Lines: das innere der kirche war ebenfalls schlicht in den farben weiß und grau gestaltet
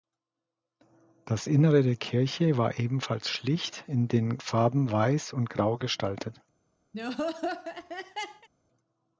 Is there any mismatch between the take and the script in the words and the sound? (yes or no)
yes